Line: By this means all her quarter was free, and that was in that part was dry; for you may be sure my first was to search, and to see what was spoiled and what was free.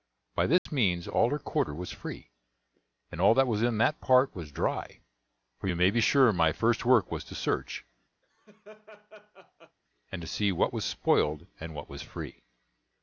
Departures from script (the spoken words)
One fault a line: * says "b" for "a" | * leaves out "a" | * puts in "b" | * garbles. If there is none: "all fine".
* puts in "all"
* puts in "work"